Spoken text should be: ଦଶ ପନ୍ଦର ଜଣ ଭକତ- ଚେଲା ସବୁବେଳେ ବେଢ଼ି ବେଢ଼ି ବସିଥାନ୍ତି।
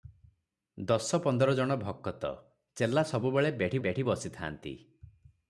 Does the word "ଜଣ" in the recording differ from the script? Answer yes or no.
no